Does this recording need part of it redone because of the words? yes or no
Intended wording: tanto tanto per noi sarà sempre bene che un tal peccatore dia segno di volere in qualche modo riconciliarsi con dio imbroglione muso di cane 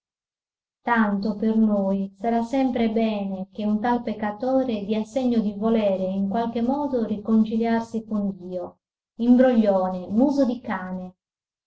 yes